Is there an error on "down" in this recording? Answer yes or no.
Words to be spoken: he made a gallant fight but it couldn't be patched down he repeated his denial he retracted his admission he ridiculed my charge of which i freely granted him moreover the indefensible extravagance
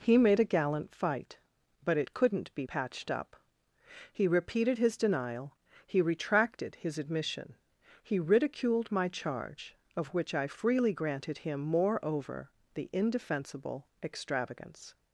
yes